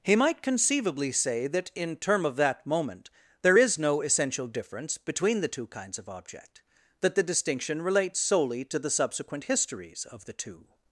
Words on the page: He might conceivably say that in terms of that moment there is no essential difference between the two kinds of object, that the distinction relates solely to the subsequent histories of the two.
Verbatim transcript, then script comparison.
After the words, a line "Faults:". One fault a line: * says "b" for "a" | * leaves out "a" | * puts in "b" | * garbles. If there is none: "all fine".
He might conceivably say that in term of that moment there is no essential difference between the two kinds of object, that the distinction relates solely to the subsequent histories of the two.
Faults:
* says "term" for "terms"